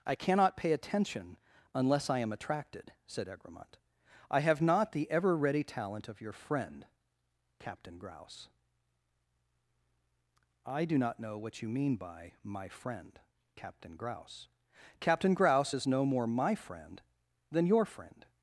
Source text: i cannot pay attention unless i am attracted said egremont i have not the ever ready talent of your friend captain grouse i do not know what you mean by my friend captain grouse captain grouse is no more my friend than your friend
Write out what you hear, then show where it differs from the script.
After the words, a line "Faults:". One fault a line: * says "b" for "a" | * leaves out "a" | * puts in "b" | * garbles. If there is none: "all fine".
i cannot pay attention unless i am attracted said egremont i have not the ever ready talent of your friend captain grouse i do not know what you mean by my friend captain grouse captain grouse is no more my friend than your friend
Faults:
all fine